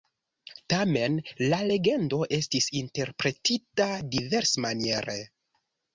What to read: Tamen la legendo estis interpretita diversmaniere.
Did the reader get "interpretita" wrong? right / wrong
right